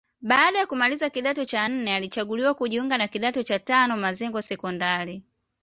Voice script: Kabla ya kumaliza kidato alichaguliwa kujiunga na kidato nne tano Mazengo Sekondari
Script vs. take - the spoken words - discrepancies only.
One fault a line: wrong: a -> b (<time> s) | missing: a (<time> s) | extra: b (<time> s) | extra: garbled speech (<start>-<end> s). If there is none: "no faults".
wrong: Kabla -> Baada (0.2 s)
extra: cha nne (1.4 s)
wrong: nne -> cha (3.4 s)